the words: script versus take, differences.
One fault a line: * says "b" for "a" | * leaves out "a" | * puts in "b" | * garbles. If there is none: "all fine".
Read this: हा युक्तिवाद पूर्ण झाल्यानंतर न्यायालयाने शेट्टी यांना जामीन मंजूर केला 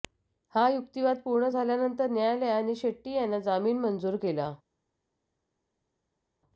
all fine